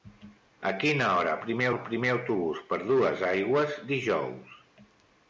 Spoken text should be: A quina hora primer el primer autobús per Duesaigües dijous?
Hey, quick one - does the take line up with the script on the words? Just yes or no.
yes